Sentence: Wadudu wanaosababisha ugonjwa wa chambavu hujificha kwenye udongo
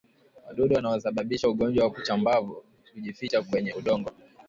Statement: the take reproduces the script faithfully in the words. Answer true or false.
true